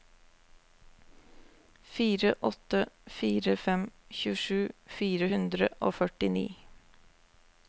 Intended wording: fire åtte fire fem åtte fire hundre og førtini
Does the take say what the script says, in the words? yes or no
no